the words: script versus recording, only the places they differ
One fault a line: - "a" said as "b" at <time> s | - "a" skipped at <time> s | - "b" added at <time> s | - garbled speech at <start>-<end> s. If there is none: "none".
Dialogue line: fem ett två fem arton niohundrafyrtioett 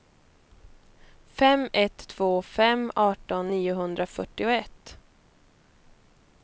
none